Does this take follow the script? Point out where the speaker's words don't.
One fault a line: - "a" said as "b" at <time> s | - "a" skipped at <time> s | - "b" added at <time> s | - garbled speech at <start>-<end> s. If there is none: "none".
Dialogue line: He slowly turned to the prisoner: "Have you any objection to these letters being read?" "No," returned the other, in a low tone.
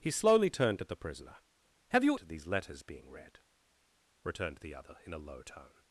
- "any objection" skipped at 2.2 s
- "No" skipped at 3.4 s